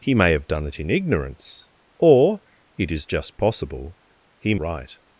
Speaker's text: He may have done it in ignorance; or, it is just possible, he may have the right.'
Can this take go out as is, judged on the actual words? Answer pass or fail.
fail